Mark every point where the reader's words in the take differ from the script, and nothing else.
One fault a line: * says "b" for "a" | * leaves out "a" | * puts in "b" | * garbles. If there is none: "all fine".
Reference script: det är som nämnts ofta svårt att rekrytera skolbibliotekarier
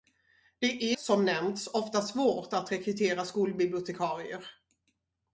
* leaves out "är"